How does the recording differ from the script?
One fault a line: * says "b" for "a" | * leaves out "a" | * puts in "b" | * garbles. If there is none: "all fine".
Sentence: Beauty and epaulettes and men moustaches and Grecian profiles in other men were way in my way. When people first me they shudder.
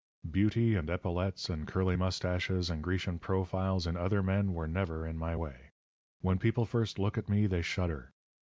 * says "curly" for "men"
* says "never" for "way"
* puts in "look at"